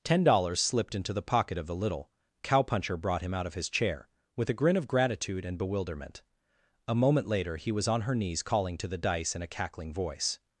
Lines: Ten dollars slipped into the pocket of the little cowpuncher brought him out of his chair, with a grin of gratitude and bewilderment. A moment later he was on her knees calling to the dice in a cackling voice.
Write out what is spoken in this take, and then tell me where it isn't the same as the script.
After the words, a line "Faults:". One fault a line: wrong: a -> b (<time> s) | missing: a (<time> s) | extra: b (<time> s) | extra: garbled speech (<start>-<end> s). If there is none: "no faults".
Ten dollars slipped into the pocket of the little cowpuncher brought him out of his chair, with a grin of gratitude and bewilderment. A moment later he was on her knees calling to the dice in a cackling voice.
Faults:
no faults